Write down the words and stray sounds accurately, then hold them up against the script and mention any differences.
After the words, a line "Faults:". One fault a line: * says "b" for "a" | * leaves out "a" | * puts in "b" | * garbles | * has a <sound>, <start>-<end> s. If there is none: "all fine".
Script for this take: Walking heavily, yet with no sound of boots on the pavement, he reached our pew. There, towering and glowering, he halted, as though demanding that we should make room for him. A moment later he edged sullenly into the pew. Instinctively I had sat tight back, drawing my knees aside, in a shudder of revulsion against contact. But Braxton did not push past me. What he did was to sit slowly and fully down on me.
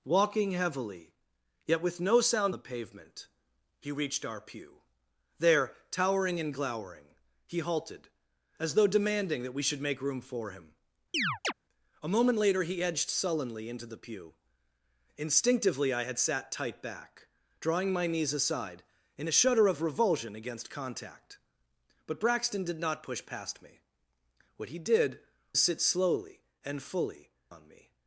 Walking heavily, yet with no sound the pavement, he reached our pew. There, towering and glowering, he halted, as though demanding that we should make room for him. A moment later he edged sullenly into the pew. Instinctively I had sat tight back, drawing my knees aside, in a shudder of revulsion against contact. But Braxton did not push past me. What he did sit slowly and fully on me.
Faults:
* leaves out "of boots on"
* has a chirp, 11.1-11.5 s
* leaves out "was to"
* leaves out "down"